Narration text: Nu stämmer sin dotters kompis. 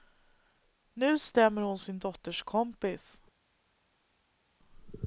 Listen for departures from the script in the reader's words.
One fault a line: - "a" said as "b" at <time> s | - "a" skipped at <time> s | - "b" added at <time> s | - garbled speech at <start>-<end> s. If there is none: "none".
- "hon" added at 1.6 s